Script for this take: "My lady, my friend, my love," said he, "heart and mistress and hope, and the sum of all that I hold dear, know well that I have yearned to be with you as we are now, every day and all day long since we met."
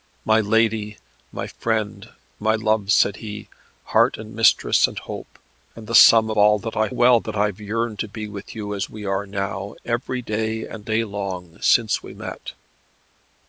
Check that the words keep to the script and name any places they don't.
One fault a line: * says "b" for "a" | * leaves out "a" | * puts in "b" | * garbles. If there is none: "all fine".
* leaves out "of"
* leaves out "hold dear know"
* leaves out "all"